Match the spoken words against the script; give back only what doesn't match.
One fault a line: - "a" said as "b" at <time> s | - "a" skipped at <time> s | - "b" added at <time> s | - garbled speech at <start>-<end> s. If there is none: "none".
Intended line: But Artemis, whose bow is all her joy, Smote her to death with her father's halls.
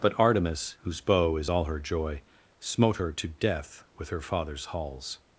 none